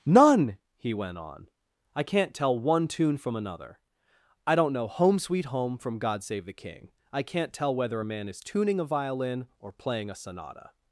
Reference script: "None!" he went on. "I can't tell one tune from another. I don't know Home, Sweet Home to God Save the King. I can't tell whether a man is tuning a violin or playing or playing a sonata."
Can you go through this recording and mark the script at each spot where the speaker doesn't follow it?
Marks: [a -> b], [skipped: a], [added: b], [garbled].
"None!" he went on. "I can't tell one tune from another. I don't know Home, Sweet Home [to -> from] God Save the King. I can't tell whether a man is tuning a violin or playing [skipped: or playing] a sonata."